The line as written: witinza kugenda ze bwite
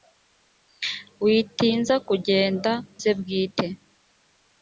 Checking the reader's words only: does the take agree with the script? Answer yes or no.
yes